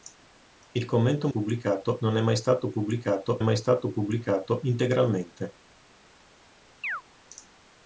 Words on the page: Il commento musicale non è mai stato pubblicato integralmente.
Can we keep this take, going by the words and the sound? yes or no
no